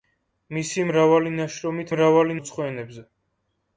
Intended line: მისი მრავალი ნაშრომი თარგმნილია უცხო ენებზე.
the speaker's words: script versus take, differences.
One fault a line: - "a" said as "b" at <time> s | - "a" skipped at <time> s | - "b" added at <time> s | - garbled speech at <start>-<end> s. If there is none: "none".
- "თარგმნილია" said as "მრავალი" at 1.9 s